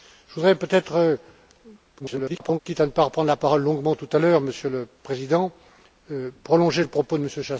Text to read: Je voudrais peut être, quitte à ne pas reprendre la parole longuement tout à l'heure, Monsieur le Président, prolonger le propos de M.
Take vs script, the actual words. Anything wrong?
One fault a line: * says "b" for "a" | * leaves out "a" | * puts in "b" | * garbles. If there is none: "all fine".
* garbles